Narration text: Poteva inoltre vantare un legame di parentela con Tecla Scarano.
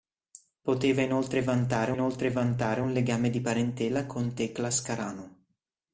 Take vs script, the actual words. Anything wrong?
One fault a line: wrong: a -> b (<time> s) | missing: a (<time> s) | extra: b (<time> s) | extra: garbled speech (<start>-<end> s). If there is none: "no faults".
extra: inoltre vantare (1.9 s)